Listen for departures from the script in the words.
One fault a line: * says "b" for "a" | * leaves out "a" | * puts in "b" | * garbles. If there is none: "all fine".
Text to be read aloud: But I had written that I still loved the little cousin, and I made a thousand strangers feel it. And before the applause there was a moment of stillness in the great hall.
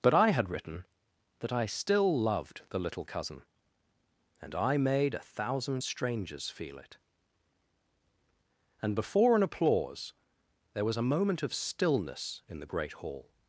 * says "an" for "the"